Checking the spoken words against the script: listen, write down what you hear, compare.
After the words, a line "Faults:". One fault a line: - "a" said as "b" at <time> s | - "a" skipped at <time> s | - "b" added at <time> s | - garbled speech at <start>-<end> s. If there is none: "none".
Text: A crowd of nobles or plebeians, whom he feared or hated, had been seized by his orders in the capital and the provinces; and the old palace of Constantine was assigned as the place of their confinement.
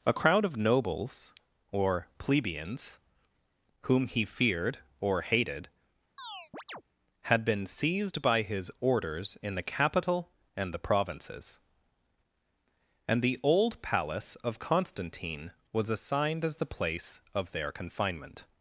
A crowd of nobles or plebeians, whom he feared or hated, had been seized by his orders in the capital and the provinces; and the old palace of Constantine was assigned as the place of their confinement.
Faults:
none